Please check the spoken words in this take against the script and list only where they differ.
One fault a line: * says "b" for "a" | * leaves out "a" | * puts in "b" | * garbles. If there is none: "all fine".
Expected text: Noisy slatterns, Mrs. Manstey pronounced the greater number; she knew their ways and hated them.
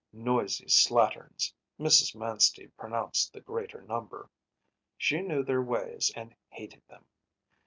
all fine